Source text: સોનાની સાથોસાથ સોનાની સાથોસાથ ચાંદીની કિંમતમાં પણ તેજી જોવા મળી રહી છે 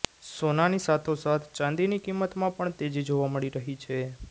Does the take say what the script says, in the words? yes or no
no